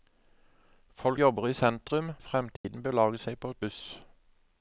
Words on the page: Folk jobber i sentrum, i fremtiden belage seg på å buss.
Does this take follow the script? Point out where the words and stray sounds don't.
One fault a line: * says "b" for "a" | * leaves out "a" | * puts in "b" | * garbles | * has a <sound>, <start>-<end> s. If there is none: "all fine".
* has a dropout, 2.6-2.6 s